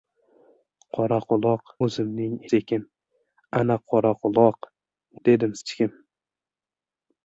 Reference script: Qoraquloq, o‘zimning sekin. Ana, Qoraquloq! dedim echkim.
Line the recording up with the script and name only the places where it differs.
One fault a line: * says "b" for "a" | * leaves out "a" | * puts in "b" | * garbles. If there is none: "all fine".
all fine